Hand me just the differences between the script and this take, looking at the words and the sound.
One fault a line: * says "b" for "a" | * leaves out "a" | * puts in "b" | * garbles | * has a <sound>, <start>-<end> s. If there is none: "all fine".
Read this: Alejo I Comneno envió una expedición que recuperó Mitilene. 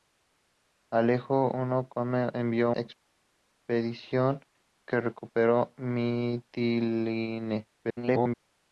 * leaves out "una"
* garbles